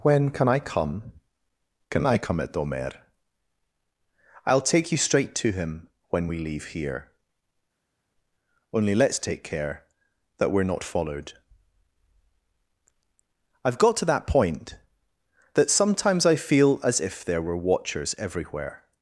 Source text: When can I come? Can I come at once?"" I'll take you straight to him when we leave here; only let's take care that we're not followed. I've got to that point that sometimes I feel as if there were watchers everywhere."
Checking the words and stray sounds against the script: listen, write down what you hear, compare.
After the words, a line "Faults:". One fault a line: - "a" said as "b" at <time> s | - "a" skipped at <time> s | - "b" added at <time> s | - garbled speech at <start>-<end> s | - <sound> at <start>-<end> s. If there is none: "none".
When can I come? Can I come at domer?"" I'll take you straight to him when we leave here; only let's take care that we're not followed. I've got to that point that sometimes I feel as if there were watchers everywhere."
Faults:
- "once" said as "domer" at 2.5 s